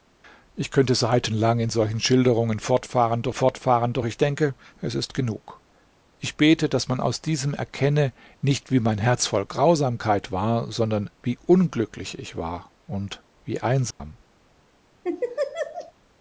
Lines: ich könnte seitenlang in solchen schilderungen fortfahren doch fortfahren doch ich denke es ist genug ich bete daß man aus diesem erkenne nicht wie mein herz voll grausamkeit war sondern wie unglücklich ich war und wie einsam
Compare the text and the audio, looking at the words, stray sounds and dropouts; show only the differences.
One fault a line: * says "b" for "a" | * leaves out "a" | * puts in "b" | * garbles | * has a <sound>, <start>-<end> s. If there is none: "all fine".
* has a dropout, 13.9-14.0 s
* has a laugh, 15.0-15.9 s